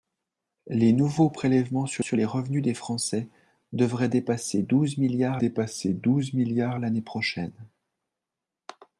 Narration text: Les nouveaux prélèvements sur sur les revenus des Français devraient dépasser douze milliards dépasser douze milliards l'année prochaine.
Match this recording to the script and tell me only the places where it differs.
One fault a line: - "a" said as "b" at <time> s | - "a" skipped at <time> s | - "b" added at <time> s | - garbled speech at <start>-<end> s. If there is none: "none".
none